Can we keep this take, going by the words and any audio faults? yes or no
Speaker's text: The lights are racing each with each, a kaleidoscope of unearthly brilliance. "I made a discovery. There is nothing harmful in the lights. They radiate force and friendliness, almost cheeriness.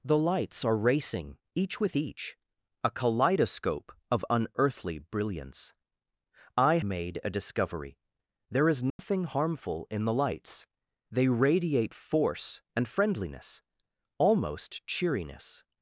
no